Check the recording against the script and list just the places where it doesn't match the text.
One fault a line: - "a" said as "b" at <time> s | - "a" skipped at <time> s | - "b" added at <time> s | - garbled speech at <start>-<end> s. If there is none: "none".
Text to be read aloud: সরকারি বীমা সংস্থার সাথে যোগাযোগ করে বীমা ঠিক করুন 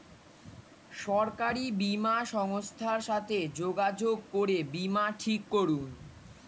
none